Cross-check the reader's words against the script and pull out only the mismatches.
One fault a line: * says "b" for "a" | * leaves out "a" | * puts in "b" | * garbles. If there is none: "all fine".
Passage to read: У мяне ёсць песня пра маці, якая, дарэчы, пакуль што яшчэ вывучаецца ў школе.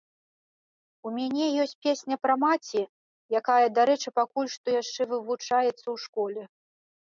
all fine